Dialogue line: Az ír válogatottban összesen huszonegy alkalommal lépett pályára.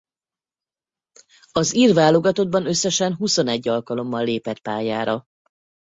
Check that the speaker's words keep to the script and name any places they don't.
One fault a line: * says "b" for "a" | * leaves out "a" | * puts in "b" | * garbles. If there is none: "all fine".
all fine